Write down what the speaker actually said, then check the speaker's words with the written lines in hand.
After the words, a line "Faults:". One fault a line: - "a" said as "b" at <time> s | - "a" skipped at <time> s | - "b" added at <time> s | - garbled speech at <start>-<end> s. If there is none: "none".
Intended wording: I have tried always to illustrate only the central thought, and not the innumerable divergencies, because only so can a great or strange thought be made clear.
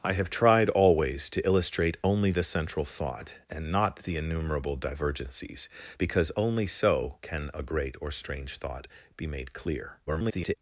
I have tried always to illustrate only the central thought, and not the innumerable divergencies, because only so can a great or strange thought be made clear. [garbled]
Faults:
- garbled speech at 10.1-10.6 s